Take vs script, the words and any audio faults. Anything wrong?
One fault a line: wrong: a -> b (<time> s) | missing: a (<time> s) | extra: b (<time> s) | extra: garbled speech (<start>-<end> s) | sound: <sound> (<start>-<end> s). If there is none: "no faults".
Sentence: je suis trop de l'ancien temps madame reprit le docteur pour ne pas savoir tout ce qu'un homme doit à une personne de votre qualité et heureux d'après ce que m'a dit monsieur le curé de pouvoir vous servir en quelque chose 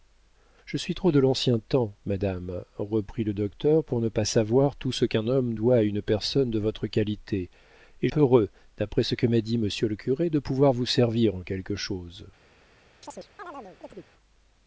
sound: chirp (13.0-14.1 s)